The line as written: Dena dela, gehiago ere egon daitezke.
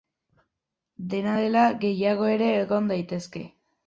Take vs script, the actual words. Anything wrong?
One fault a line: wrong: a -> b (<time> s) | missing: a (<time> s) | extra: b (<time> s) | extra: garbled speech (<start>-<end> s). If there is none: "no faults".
no faults